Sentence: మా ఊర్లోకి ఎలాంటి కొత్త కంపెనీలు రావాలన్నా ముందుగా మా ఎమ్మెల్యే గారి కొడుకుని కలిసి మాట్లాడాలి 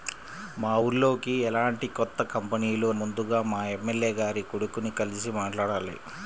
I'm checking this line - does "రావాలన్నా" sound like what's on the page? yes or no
no